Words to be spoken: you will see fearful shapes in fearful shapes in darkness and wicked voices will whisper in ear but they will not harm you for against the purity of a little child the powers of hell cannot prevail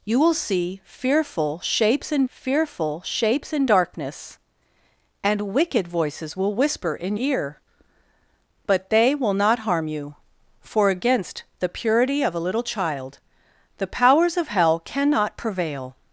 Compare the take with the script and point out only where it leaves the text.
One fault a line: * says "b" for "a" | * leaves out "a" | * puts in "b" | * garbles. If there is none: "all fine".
all fine